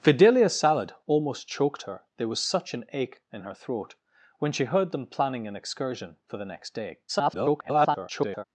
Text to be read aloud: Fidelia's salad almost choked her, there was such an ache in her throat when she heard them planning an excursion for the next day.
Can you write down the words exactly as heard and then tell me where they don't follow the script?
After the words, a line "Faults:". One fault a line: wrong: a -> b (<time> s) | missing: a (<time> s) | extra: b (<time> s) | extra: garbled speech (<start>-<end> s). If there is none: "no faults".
Fidelia's salad almost choked her, there was such an ache in her throat when she heard them planning an excursion for the next day. [garbled]
Faults:
extra: garbled speech (7.1-8.4 s)